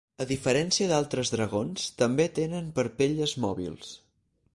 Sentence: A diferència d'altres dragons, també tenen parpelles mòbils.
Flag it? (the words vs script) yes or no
no